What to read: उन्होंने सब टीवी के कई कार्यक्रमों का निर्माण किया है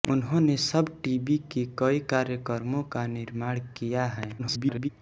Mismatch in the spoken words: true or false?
true